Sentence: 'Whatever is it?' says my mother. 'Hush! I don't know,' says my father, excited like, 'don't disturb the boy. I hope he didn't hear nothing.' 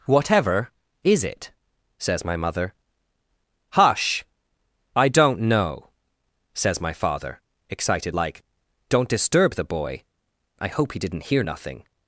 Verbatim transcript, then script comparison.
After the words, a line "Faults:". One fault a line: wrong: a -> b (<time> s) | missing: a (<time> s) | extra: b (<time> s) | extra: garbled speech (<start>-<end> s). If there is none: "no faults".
'Whatever is it?' says my mother. 'Hush! I don't know,' says my father, excited like, 'don't disturb the boy. I hope he didn't hear nothing.'
Faults:
no faults